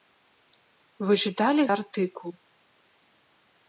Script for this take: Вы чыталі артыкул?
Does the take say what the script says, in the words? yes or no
yes